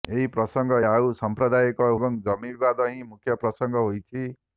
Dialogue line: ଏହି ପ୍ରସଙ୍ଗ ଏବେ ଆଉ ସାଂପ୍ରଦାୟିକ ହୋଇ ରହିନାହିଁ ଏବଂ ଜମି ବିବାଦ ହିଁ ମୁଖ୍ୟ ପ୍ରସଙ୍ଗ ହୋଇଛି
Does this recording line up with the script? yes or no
no